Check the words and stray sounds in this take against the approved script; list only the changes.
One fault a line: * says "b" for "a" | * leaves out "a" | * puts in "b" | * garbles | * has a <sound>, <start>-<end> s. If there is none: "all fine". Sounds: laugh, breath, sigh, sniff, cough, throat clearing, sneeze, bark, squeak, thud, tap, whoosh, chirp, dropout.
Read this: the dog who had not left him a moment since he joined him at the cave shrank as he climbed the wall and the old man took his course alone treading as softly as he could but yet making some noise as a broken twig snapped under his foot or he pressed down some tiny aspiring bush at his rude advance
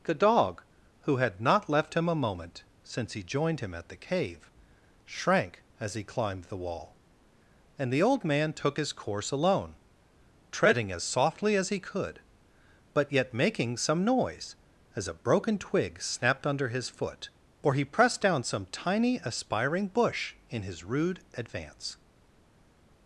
* says "in" for "at"